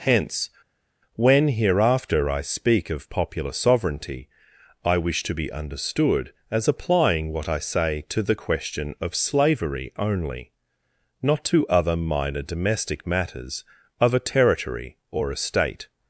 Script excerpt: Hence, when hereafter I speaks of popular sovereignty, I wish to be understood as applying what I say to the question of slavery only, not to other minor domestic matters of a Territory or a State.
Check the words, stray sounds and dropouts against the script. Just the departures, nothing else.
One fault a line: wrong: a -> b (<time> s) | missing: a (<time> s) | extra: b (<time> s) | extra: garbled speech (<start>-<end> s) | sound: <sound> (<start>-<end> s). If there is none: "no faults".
wrong: speaks -> speak (2.4 s)